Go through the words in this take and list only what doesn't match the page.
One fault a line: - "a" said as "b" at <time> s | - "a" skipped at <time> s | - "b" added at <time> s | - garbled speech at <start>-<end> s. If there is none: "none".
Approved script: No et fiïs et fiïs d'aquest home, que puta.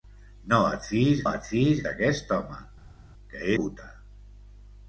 none